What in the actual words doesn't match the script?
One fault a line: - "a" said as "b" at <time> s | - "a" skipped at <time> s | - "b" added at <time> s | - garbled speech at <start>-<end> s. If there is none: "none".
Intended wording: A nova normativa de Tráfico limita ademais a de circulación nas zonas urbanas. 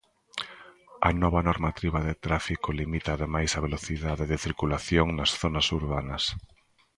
- "velocidade" added at 3.7 s